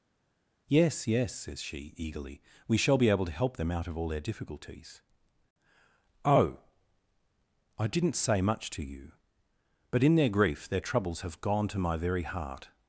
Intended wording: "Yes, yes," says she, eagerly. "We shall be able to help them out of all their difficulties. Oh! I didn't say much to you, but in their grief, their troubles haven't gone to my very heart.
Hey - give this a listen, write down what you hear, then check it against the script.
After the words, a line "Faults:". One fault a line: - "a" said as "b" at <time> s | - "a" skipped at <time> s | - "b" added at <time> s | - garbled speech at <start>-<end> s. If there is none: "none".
"Yes, yes," says she, eagerly. "We shall be able to help them out of all their difficulties. Oh! I didn't say much to you, but in their grief, their troubles have gone to my very heart.
Faults:
- "haven't" said as "have" at 11.2 s